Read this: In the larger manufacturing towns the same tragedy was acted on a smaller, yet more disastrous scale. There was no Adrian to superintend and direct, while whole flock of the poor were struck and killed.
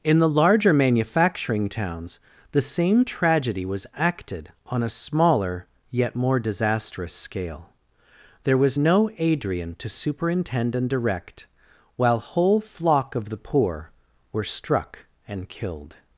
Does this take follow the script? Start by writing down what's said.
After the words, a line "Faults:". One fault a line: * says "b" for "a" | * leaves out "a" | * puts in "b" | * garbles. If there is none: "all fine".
In the larger manufacturing towns the same tragedy was acted on a smaller, yet more disastrous scale. There was no Adrian to superintend and direct, while whole flock of the poor were struck and killed.
Faults:
all fine